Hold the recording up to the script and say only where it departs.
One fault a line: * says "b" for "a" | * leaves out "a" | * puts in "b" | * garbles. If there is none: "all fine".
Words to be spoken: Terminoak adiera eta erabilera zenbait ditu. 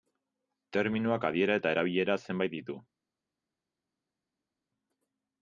all fine